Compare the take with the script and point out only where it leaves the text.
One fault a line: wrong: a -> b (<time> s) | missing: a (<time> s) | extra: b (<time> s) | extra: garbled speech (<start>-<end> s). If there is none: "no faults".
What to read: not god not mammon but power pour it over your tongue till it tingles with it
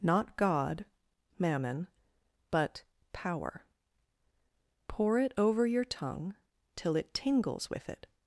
missing: not (0.8 s)